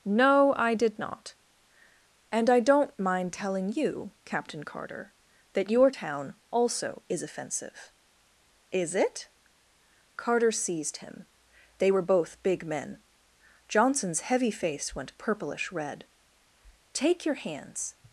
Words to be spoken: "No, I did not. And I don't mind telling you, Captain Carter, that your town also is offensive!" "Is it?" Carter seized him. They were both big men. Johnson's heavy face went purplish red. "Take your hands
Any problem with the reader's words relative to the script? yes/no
no